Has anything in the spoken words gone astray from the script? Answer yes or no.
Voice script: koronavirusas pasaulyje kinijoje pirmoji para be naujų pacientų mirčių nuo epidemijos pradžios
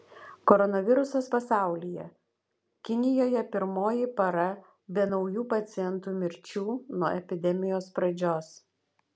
no